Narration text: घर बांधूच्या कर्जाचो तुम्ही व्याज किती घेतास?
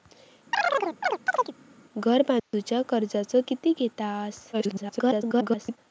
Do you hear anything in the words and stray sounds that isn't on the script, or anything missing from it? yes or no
yes